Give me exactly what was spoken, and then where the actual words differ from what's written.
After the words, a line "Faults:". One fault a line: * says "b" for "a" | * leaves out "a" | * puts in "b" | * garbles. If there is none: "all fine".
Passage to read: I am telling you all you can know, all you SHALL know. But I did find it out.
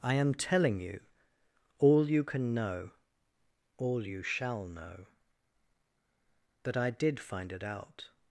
I am telling you all you can know, all you SHALL know. That I did find it out.
Faults:
* says "That" for "But"